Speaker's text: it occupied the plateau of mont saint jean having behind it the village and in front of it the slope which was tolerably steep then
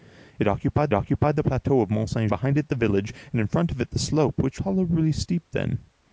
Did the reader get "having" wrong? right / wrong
wrong